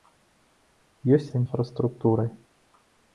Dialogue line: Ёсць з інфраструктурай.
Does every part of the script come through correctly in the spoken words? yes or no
yes